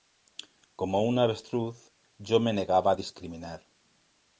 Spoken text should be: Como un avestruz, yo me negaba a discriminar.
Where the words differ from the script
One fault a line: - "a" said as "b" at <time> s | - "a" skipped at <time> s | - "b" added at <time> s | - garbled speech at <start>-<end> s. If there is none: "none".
none